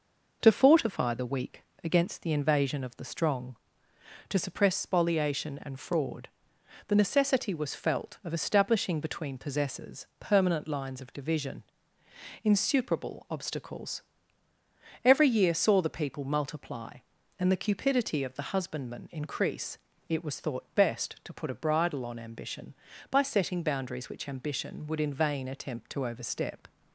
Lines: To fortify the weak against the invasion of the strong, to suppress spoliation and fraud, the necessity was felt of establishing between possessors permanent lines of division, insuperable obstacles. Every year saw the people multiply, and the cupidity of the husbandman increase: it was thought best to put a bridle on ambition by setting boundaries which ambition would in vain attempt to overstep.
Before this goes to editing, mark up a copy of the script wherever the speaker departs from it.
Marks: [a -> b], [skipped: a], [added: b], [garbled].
To fortify the weak against the invasion of the strong, to suppress spoliation and fraud, the necessity was felt of establishing between possessors permanent lines of division, insuperable obstacles. Every year saw the people multiply, and the cupidity of the husbandman increase: it was thought best to put a bridle on ambition by setting boundaries which ambition would in vain attempt to overstep.